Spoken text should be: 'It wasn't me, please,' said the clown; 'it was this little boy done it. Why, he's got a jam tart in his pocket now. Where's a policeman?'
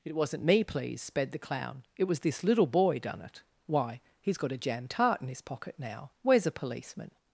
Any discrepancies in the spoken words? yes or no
yes